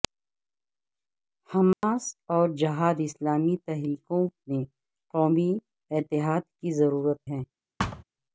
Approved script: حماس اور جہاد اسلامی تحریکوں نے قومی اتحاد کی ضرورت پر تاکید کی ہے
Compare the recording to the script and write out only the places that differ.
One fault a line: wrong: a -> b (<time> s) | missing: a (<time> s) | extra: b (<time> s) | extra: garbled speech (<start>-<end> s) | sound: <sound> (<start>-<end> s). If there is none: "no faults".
sound: dropout (1.7-1.8 s)
missing: پر تاکید کی (7.3 s)
sound: thud (7.8-8.0 s)